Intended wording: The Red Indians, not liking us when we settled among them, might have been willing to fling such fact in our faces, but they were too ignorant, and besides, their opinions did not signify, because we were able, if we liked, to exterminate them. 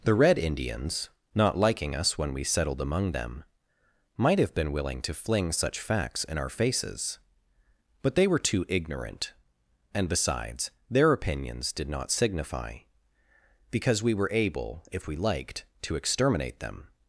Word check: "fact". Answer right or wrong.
wrong